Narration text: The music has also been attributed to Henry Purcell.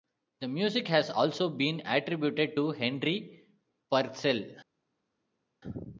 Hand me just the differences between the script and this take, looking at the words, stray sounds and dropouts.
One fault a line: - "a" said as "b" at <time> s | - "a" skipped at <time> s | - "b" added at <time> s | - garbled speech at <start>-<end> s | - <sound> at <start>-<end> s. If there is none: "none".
none